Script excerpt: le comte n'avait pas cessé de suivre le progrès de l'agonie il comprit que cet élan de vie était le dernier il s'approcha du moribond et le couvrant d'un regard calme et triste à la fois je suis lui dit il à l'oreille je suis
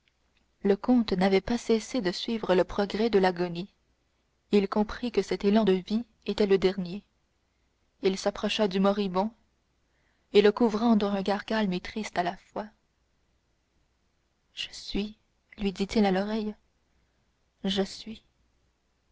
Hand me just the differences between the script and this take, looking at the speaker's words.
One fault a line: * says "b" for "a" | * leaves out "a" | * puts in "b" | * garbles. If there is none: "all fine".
all fine